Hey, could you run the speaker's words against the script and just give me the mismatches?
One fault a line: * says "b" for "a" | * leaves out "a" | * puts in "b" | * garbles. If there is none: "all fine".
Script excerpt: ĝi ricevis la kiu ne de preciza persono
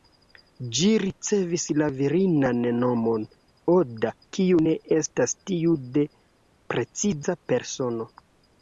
* puts in "virinan nomon oda"
* puts in "estas tiu"